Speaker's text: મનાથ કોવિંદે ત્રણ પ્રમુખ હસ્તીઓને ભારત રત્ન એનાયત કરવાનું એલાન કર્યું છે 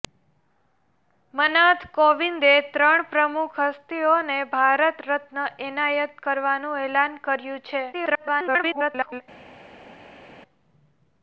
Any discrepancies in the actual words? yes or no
yes